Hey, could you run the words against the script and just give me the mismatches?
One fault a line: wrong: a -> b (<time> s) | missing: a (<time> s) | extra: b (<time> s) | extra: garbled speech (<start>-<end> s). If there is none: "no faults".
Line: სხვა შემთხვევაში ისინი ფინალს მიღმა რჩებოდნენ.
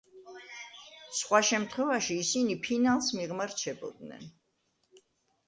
no faults